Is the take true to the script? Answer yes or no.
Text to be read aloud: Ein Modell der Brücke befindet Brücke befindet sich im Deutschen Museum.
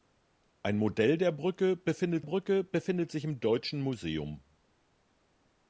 yes